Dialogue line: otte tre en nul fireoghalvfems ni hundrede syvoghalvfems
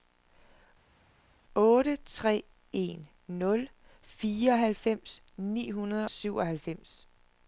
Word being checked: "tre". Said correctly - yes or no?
yes